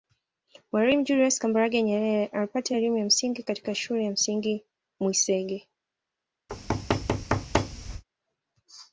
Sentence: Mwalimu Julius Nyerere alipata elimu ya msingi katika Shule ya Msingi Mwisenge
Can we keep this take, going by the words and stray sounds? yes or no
no